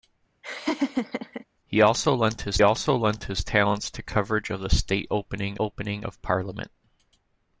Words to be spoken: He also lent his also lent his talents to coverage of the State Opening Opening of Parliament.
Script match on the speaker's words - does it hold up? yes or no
yes